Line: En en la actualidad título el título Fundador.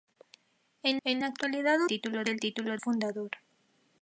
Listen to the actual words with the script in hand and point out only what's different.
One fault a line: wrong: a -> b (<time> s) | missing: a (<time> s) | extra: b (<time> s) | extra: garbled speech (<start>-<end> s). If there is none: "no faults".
no faults